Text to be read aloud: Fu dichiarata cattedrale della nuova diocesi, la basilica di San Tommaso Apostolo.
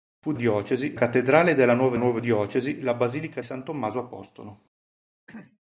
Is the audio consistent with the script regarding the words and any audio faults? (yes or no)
no